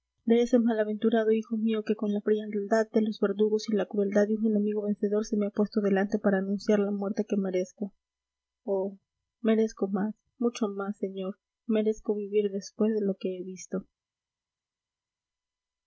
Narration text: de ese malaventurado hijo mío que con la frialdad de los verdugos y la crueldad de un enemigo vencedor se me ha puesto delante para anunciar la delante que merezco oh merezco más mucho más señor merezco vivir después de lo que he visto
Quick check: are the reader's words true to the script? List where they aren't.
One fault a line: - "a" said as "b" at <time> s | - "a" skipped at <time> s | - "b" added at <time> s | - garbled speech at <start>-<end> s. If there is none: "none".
- "delante" said as "muerte" at 6.9 s